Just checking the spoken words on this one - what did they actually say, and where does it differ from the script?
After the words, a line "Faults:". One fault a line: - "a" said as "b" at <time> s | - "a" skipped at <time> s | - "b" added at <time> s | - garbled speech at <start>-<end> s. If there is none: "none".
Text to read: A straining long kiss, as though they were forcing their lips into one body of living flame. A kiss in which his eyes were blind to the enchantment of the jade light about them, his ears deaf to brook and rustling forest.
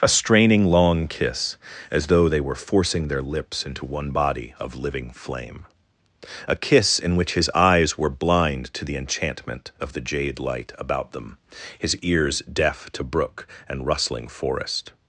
A straining long kiss, as though they were forcing their lips into one body of living flame. A kiss in which his eyes were blind to the enchantment of the jade light about them, his ears deaf to brook and rustling forest.
Faults:
none